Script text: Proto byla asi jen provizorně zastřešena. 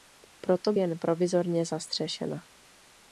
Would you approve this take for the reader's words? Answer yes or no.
no